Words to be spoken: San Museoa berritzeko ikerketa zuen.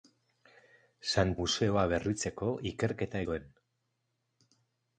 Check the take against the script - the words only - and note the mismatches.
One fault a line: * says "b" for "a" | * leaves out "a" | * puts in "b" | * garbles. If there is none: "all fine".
all fine